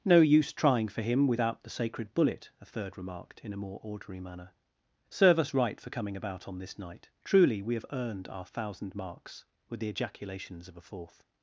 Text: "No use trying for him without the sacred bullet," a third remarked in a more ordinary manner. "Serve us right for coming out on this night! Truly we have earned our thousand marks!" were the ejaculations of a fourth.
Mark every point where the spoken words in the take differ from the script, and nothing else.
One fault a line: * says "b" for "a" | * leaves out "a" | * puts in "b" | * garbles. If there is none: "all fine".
* says "about" for "out"